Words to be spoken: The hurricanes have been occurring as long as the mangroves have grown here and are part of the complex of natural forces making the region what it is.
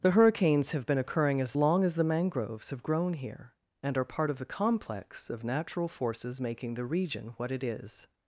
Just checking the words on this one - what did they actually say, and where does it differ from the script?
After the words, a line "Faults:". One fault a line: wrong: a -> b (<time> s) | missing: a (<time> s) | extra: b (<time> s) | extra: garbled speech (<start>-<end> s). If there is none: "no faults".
The hurricanes have been occurring as long as the mangroves have grown here and are part of the complex of natural forces making the region what it is.
Faults:
no faults